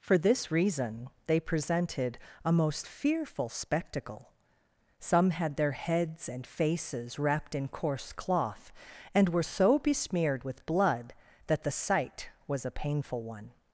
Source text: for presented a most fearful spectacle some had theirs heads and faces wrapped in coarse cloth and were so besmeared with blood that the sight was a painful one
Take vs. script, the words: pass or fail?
fail